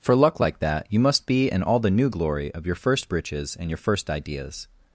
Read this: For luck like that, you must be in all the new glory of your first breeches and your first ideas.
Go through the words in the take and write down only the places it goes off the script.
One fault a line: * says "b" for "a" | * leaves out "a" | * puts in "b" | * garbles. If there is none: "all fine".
all fine